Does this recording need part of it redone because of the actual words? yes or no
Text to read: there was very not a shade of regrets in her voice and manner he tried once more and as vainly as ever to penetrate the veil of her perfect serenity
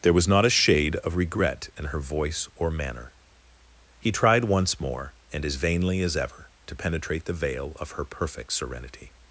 yes